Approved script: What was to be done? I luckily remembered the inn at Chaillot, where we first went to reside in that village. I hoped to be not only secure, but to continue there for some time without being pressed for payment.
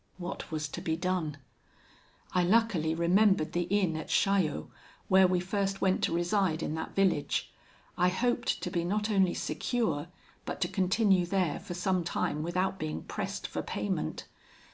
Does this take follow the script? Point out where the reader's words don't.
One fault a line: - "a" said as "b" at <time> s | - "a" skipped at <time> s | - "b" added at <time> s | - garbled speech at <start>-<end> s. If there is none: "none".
none